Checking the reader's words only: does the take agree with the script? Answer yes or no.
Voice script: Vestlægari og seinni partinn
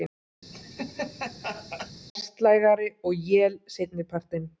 no